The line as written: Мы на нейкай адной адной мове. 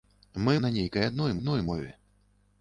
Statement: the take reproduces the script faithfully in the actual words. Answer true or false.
true